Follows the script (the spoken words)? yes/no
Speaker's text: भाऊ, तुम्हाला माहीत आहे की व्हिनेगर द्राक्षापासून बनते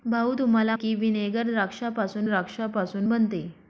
no